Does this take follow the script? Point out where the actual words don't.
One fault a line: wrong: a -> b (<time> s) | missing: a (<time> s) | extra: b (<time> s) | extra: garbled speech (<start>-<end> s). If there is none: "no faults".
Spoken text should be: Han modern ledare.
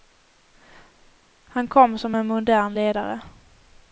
extra: kom som en (1.7 s)